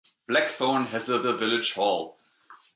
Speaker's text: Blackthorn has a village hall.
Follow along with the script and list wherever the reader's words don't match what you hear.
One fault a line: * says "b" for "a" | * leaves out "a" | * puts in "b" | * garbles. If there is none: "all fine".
* puts in "a"